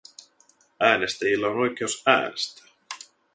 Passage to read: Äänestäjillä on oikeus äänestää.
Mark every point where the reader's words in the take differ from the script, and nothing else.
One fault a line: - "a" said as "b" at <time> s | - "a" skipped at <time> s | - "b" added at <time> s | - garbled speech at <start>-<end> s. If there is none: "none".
none